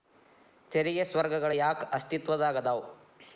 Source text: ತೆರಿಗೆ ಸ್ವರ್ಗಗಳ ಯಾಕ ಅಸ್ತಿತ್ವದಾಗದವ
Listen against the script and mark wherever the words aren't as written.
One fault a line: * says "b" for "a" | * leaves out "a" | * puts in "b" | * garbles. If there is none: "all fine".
all fine